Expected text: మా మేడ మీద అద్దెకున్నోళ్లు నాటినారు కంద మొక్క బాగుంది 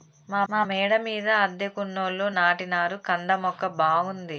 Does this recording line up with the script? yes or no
no